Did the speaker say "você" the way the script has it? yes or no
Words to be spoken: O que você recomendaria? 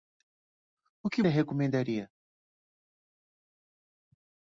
no